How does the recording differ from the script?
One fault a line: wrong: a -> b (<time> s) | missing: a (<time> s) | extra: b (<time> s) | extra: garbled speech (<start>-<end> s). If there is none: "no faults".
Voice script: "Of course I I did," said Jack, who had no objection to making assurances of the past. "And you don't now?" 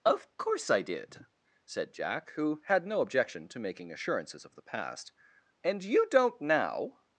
missing: I (0.8 s)